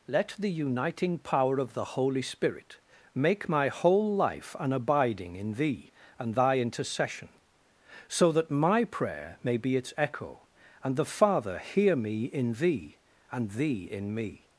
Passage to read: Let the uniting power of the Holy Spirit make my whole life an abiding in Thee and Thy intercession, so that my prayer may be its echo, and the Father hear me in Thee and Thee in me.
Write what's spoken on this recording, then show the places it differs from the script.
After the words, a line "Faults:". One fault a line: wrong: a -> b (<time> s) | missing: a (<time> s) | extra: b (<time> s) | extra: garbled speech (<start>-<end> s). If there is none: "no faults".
Let the uniting power of the Holy Spirit make my whole life an abiding in Thee and Thy intercession, so that my prayer may be its echo, and the Father hear me in Thee and Thee in me.
Faults:
no faults